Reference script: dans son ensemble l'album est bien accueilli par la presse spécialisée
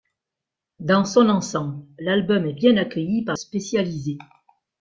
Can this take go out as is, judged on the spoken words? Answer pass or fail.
fail